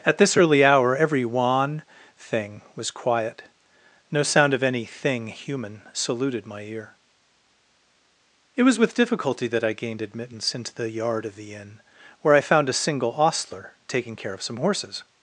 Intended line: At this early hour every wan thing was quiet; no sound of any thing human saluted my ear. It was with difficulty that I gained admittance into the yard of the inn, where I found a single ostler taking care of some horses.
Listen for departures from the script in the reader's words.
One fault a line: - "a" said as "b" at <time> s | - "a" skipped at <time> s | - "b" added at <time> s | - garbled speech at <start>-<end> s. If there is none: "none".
none